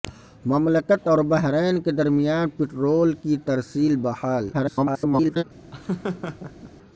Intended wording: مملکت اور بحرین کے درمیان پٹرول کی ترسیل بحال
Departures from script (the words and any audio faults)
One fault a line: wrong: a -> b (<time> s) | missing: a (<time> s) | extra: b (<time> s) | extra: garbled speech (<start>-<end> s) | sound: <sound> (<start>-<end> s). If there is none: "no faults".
extra: garbled speech (4.5-5.4 s)
sound: laugh (5.7-6.7 s)